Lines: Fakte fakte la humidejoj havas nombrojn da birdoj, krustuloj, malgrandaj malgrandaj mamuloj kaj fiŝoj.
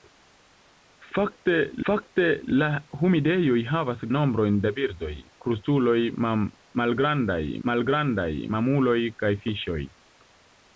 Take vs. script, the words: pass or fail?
pass